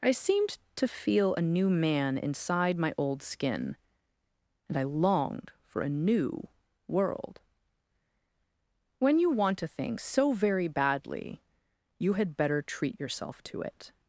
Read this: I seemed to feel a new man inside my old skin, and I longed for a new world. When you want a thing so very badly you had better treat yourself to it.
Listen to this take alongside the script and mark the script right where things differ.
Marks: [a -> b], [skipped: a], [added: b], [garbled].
I seemed to feel a new man inside my old skin, and I longed for a new world. When you want a thing so very badly you had better treat yourself to it.